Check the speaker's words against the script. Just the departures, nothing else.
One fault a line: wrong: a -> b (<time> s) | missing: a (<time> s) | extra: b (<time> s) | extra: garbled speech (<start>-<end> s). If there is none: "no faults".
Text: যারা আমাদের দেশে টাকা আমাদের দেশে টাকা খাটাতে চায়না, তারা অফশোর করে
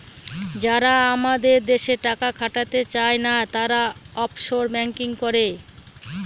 missing: আমাদের দেশে টাকা (2.3 s)
extra: ব্যাঙ্কিং (4.7 s)